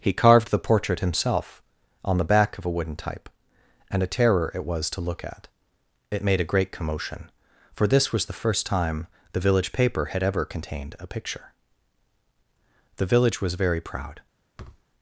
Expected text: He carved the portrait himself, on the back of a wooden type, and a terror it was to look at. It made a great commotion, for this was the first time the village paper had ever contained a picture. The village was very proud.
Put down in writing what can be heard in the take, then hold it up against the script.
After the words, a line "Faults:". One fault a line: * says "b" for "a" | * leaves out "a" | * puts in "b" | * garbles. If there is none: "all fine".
He carved the portrait himself, on the back of a wooden type, and a terror it was to look at. It made a great commotion, for this was the first time the village paper had ever contained a picture. The village was very proud.
Faults:
all fine